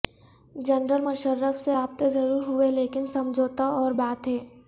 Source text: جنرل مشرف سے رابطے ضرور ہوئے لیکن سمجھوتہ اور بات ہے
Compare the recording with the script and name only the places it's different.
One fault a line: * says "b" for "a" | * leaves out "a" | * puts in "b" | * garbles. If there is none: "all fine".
all fine